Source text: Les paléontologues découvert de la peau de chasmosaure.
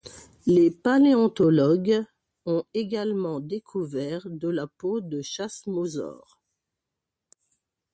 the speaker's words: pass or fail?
fail